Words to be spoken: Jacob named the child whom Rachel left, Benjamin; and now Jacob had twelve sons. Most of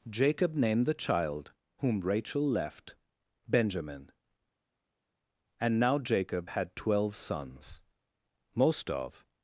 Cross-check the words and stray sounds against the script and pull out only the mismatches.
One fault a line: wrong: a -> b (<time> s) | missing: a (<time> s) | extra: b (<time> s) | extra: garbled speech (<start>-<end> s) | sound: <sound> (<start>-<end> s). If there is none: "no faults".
no faults